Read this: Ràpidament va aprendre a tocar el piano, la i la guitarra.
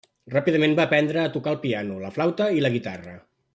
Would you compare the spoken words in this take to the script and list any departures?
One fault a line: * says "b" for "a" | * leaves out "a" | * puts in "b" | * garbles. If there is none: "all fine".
* puts in "flauta"